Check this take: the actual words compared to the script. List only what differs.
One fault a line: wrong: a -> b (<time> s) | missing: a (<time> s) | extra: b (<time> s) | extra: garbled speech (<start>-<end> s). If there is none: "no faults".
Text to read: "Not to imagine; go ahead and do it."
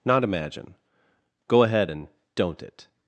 missing: to (0.2 s)
wrong: do -> don't (2.3 s)